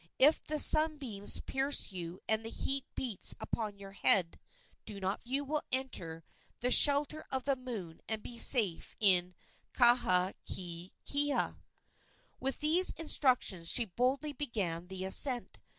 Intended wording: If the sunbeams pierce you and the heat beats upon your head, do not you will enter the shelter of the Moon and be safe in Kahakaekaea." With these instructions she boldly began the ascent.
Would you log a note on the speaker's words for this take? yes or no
no